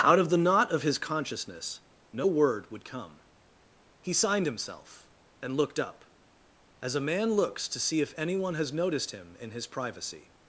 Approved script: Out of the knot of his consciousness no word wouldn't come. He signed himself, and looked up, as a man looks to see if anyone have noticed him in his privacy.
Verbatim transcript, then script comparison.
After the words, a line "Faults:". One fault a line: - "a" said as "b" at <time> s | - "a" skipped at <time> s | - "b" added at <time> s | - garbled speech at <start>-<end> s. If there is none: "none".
Out of the knot of his consciousness no word would come. He signed himself, and looked up, as a man looks to see if anyone has noticed him in his privacy.
Faults:
- "wouldn't" said as "would" at 2.7 s
- "have" said as "has" at 8.5 s